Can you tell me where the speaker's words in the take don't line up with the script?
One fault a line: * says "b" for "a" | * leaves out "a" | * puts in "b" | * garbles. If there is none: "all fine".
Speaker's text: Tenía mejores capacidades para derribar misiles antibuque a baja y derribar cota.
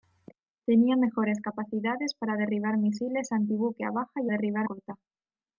all fine